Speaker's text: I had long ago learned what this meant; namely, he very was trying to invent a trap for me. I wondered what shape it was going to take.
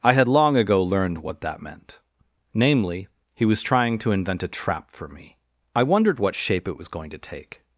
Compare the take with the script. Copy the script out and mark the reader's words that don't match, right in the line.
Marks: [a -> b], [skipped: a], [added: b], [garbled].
I had long ago learned what [this -> that] meant; namely, he [skipped: very] was trying to invent a trap for me. I wondered what shape it was going to take.